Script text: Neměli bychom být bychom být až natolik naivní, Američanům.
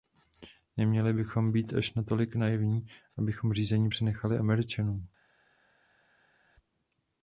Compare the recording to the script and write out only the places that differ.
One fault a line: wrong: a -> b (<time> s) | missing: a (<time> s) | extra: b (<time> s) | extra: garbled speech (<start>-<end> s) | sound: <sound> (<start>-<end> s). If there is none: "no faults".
missing: bychom být (1.7 s)
extra: abychom řízení přenechali (3.2 s)